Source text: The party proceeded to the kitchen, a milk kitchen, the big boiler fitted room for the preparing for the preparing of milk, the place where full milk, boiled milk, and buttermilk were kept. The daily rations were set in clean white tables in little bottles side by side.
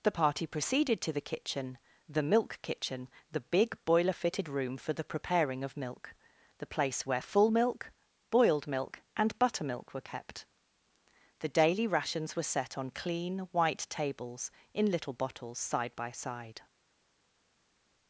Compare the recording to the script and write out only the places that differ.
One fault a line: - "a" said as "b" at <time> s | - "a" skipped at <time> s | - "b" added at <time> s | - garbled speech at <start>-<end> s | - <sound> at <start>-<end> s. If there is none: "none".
- "a" said as "the" at 2.1 s
- "for the preparing" skipped at 5.6 s
- "in" said as "on" at 12.8 s